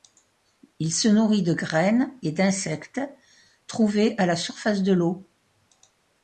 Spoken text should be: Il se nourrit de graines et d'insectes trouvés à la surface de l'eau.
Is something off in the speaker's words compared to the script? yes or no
no